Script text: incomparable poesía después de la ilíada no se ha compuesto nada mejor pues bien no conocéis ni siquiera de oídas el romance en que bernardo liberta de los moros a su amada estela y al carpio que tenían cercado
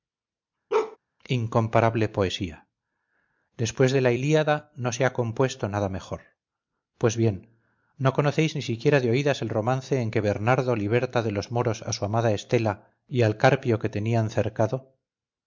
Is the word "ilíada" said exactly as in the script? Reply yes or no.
yes